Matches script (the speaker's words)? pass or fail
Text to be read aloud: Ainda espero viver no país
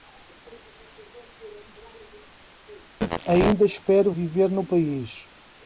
pass